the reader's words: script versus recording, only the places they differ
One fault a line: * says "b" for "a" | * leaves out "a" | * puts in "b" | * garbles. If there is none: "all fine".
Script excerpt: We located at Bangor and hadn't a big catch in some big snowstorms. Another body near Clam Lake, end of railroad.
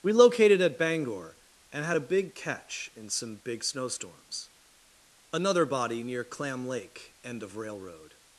* says "had" for "hadn't"